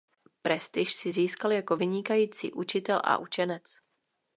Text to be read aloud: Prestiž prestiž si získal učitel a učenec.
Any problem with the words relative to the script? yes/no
yes